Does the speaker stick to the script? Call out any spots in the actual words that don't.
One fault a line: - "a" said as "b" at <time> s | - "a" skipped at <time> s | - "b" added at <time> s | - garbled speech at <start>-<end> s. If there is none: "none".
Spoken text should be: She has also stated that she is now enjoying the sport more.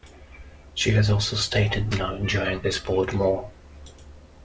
- "that she is" skipped at 1.9 s